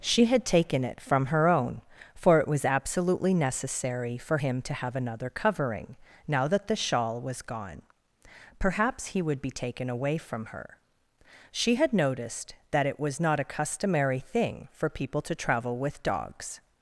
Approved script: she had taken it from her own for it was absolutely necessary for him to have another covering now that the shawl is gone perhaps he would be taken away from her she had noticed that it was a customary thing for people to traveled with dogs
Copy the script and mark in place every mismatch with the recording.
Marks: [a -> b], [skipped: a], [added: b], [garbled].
she had taken it from her own for it was absolutely necessary for him to have another covering now that the shawl [is -> was] gone perhaps he would be taken away from her she had noticed that it was [added: not] a customary thing for people to [traveled -> travel] with dogs